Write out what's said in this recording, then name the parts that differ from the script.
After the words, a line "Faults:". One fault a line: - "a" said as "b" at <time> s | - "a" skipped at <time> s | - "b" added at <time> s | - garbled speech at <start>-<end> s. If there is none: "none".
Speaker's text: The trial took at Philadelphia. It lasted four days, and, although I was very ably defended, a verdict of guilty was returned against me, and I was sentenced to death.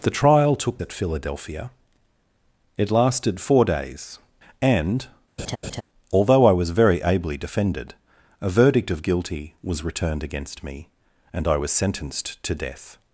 The trial took at Philadelphia. It lasted four days, and, although I was very ably defended, a verdict of guilty was returned against me, and I was sentenced to death.
Faults:
none